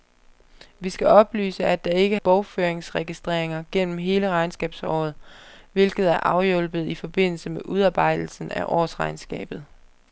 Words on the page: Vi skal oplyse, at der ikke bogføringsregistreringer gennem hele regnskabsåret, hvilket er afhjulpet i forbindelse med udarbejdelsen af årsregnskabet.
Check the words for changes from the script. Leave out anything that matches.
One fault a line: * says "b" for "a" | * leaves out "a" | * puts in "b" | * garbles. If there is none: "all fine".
all fine